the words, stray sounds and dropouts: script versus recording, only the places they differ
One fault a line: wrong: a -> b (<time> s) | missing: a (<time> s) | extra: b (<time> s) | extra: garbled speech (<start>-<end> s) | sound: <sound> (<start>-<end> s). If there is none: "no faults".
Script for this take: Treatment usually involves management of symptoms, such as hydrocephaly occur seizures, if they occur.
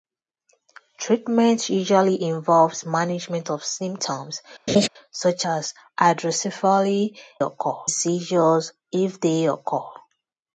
sound: laugh (4.7-4.9 s)